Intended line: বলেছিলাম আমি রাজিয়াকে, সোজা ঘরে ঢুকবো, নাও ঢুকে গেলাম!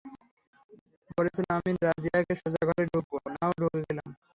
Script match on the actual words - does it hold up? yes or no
yes